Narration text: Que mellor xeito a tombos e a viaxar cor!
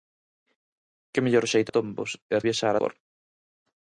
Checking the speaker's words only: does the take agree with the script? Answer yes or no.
yes